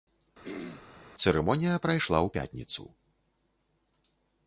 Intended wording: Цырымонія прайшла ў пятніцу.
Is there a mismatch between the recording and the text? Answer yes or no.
no